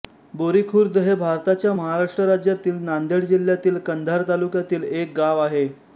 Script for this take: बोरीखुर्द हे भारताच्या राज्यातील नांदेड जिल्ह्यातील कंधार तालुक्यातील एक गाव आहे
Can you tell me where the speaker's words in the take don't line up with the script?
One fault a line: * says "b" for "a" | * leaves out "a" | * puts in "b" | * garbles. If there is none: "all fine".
* puts in "महाराष्ट्र"